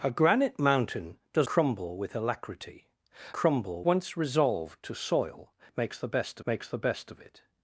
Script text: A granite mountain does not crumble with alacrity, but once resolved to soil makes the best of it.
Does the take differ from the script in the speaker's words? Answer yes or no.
yes